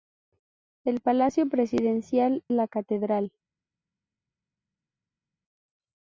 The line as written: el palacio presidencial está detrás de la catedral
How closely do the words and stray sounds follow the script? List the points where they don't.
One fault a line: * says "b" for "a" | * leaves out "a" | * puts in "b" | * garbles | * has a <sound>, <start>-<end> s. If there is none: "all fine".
* leaves out "está detrás de"